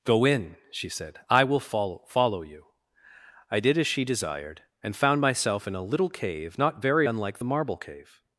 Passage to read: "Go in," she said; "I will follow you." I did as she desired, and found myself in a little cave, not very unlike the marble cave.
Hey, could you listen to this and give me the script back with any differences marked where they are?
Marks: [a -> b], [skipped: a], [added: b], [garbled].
"Go in," she said; "I will follow [added: follow] you." I did as she desired, and found myself in a little cave, not very unlike the marble cave.